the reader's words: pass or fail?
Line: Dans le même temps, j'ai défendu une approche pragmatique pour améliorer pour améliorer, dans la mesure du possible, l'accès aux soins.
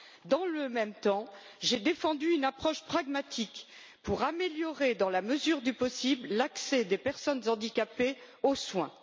fail